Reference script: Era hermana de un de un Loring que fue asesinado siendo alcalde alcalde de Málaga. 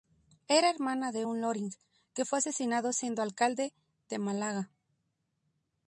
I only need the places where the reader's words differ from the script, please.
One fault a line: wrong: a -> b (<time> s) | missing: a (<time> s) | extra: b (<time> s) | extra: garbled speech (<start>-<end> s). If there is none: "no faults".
missing: de un (1.4 s)
missing: alcalde (3.7 s)